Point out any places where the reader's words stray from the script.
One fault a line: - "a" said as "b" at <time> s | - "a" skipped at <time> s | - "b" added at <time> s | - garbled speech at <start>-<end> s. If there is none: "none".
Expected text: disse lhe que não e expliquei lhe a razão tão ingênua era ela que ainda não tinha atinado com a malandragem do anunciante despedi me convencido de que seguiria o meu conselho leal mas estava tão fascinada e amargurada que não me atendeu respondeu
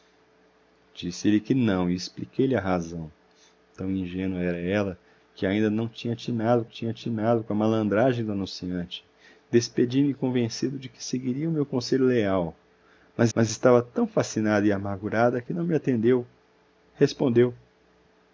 - "tinha atinado" added at 6.6 s
- "mas" added at 13.3 s